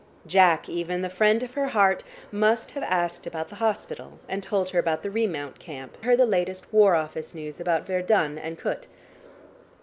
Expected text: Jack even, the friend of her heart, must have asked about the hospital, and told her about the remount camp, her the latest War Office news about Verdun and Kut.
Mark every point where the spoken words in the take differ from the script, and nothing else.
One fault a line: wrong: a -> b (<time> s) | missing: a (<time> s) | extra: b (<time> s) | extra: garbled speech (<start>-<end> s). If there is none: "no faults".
no faults